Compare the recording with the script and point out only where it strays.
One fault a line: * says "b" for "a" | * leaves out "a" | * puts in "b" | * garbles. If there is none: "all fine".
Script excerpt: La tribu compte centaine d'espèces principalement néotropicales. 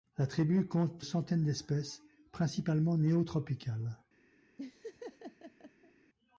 all fine